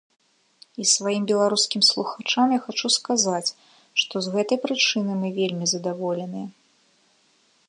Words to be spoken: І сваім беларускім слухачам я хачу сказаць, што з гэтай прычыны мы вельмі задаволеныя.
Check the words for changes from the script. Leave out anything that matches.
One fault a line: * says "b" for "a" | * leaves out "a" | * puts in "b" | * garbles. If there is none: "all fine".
all fine